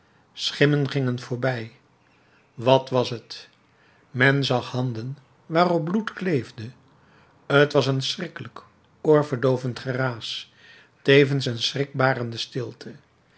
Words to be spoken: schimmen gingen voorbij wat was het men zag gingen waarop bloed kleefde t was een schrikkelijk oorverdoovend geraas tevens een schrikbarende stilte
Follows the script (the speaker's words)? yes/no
no